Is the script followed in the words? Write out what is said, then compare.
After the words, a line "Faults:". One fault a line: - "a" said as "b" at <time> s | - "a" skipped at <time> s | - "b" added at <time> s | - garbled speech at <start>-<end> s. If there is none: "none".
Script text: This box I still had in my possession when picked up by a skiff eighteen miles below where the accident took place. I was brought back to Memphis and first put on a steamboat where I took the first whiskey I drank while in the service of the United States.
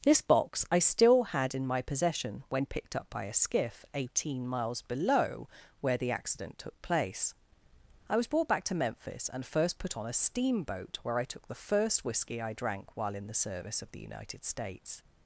This box I still had in my possession when picked up by a skiff eighteen miles below where the accident took place. I was brought back to Memphis and first put on a steamboat where I took the first whiskey I drank while in the service of the United States.
Faults:
none